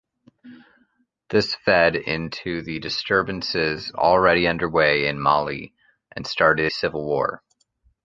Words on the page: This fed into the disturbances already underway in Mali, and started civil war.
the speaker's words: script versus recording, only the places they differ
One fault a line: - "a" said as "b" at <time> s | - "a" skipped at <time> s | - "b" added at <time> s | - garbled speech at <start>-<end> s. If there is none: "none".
none